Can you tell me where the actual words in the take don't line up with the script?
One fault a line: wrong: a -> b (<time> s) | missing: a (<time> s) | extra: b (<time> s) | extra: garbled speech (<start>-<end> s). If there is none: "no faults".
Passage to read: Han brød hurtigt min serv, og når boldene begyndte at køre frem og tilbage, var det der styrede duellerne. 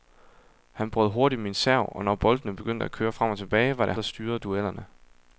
no faults